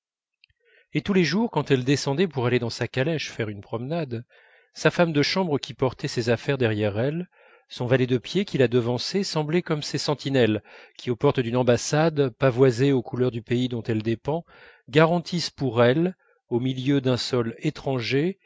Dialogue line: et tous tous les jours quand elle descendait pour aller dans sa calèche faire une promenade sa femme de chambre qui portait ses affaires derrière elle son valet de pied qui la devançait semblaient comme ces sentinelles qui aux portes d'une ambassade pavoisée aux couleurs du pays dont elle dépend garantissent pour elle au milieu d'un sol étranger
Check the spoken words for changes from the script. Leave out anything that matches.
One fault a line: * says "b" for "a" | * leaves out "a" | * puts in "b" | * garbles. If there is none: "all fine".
* leaves out "tous"